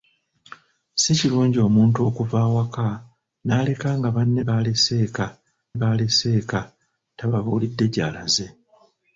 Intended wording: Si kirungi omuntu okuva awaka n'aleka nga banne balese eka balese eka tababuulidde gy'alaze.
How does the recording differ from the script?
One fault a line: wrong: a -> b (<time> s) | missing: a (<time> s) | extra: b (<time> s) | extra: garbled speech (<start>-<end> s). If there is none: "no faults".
no faults